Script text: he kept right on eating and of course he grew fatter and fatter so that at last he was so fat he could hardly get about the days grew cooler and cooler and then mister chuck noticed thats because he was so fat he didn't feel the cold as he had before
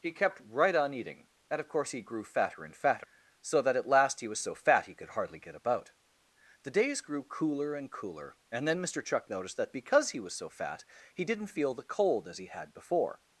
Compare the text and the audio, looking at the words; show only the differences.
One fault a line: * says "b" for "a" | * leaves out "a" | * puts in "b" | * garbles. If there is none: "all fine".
* says "that" for "thats"